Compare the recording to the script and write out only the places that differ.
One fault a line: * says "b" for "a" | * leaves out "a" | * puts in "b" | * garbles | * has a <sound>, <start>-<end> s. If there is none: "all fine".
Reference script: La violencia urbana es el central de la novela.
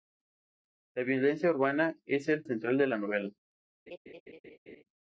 * has a laugh, 3.9-4.8 s